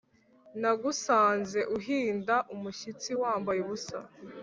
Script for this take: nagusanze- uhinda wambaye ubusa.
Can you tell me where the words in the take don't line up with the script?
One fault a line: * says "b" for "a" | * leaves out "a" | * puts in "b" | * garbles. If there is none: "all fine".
* puts in "umushyitsi"